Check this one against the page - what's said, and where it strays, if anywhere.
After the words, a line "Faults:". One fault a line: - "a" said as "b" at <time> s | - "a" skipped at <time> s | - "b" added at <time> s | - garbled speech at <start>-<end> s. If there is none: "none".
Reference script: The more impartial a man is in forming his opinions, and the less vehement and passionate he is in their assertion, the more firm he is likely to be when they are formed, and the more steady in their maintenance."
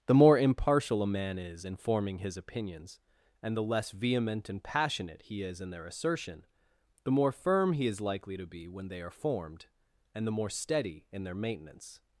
The more impartial a man is in forming his opinions, and the less vehement and passionate he is in their assertion, the more firm he is likely to be when they are formed, and the more steady in their maintenance."
Faults:
none